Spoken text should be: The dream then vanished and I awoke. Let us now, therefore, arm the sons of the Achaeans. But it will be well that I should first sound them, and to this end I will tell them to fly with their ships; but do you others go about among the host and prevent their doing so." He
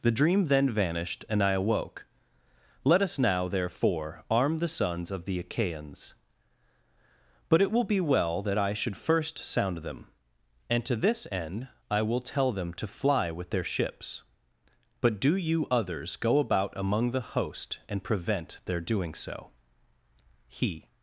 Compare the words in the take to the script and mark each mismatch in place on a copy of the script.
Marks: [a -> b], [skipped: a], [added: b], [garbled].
The dream then vanished and I awoke. Let us now, therefore, arm the sons of the Achaeans. But it will be well that I should first sound them, and to this end I will tell them to fly with their ships; but do you others go about among the host and prevent their doing so." He